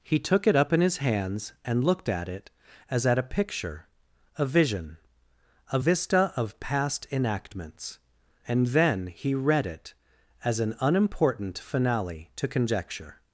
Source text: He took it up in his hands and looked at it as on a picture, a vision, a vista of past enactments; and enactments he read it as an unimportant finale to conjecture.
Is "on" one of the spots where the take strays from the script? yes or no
yes